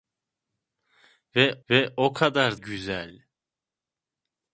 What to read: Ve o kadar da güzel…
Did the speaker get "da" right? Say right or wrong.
wrong